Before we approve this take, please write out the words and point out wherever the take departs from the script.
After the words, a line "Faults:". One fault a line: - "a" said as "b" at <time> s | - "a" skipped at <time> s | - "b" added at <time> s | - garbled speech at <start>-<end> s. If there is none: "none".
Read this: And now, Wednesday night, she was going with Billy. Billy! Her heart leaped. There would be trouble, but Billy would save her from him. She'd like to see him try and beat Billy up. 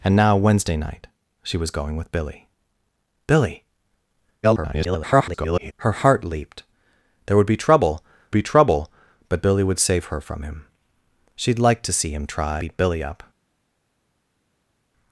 And now, Wednesday night, she was going with Billy. Billy! [garbled] Her heart leaped. There would be trouble be trouble, but Billy would save her from him. She'd like to see him try beat Billy up.
Faults:
- garbled speech at 4.4-5.7 s
- "be trouble" added at 8.3 s
- "and" skipped at 12.6 s